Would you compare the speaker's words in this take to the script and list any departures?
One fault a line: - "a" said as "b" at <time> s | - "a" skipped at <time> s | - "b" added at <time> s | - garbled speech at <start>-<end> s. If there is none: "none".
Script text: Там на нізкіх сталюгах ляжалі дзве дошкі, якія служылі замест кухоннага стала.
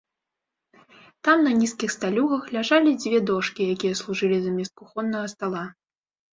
none